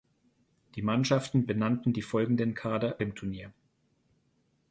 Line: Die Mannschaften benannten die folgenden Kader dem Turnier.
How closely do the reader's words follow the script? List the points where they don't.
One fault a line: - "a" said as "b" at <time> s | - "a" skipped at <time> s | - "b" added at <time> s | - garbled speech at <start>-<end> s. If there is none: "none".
none